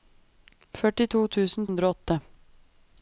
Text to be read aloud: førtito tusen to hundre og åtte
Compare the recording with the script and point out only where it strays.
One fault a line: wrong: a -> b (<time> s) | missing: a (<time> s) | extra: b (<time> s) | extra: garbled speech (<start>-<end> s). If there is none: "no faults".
missing: to (1.7 s)